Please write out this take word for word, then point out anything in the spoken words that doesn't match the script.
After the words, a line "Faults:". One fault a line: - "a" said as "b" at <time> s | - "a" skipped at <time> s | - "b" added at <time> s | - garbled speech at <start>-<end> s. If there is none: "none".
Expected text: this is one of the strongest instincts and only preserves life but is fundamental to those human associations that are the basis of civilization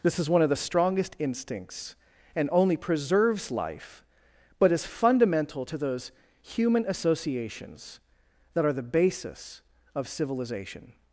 this is one of the strongest instincts and only preserves life but is fundamental to those human associations that are the basis of civilization
Faults:
none